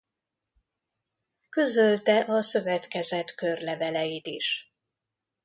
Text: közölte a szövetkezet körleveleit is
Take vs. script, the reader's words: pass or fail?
pass